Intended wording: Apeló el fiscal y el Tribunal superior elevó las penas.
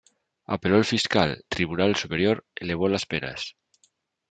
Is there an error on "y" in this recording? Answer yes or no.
yes